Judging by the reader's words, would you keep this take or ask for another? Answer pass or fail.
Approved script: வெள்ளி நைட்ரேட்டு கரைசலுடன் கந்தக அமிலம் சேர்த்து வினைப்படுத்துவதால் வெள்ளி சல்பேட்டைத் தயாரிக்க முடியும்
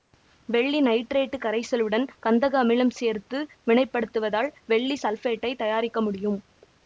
pass